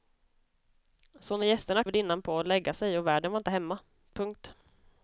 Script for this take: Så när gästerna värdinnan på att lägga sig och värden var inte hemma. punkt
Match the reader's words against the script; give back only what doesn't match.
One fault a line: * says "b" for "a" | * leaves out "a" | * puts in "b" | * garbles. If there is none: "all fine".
all fine